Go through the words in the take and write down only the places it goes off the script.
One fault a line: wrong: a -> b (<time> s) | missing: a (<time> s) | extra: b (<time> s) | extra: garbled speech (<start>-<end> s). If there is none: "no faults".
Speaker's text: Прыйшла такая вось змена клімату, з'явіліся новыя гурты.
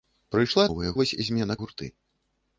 wrong: такая -> новыя (0.7 s)
missing: клімату з'явіліся новыя (1.6 s)